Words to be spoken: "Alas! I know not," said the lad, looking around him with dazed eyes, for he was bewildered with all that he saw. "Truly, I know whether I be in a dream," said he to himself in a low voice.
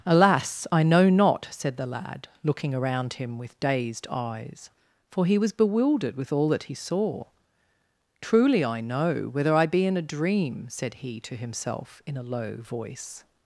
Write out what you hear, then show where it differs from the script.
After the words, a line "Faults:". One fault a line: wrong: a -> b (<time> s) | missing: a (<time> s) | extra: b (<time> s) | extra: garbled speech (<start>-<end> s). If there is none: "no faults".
"Alas! I know not," said the lad, looking around him with dazed eyes, for he was bewildered with all that he saw. "Truly, I know whether I be in a dream," said he to himself in a low voice.
Faults:
no faults